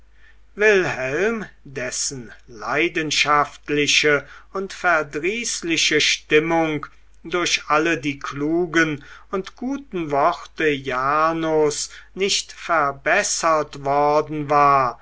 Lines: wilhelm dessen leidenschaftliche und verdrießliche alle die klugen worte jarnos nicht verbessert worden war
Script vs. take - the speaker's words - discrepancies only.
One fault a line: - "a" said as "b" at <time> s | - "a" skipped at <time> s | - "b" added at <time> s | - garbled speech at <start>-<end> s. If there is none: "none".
- "stimmung durch" added at 6.0 s
- "und guten" added at 9.3 s